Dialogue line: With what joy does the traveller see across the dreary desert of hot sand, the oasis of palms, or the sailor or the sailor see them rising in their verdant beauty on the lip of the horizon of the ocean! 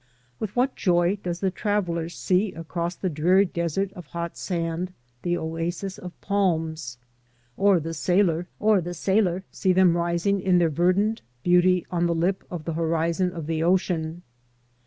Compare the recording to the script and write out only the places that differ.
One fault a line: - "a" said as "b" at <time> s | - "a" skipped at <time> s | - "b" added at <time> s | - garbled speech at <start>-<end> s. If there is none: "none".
none